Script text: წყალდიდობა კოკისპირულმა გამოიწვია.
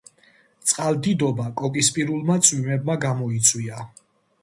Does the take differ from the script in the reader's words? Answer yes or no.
yes